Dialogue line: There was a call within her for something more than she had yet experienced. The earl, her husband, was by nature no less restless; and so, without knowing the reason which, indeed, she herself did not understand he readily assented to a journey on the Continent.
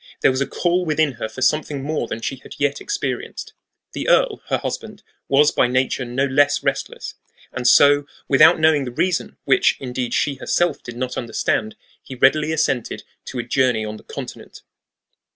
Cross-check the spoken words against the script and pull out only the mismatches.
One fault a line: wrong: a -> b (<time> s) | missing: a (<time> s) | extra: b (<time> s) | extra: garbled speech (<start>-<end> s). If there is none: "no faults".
no faults